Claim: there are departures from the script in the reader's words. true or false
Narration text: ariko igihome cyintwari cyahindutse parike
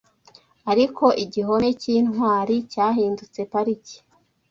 false